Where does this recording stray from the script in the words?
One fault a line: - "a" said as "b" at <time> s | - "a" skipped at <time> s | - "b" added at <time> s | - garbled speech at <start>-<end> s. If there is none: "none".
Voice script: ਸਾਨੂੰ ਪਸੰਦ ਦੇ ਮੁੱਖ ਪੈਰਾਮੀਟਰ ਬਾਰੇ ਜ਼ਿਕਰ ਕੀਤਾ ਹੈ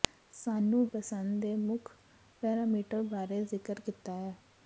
none